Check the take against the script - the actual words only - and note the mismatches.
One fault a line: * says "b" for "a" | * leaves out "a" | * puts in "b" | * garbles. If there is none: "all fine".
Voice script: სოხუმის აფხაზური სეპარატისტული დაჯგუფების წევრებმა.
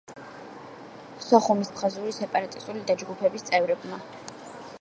all fine